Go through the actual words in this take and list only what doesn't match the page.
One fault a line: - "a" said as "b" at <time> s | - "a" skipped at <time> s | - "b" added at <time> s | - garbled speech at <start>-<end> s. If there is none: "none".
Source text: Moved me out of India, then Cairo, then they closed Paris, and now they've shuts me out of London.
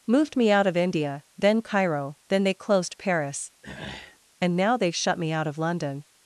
- "shuts" said as "shut" at 5.0 s